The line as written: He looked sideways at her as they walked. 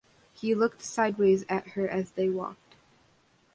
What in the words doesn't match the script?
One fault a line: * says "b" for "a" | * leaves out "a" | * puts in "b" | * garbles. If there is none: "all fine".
all fine